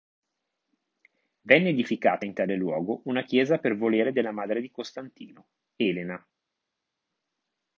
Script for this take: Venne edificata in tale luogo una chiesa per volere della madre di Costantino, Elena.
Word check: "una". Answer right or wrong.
right